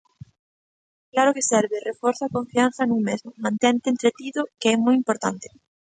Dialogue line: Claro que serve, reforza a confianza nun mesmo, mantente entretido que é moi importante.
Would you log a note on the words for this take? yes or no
no